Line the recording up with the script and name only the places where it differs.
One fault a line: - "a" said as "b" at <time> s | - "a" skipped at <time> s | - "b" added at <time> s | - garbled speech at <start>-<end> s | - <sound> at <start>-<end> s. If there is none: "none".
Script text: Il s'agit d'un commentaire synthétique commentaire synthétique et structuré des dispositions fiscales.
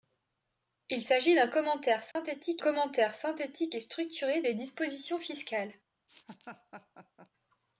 - dropout at 2.1-2.2 s
- laugh at 6.1-7.3 s